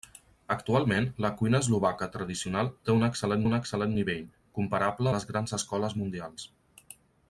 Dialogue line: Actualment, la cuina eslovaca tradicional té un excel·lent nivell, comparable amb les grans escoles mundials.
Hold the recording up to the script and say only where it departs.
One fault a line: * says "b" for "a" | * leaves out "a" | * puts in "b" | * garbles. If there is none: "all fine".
* puts in "un excel·lent"
* leaves out "amb"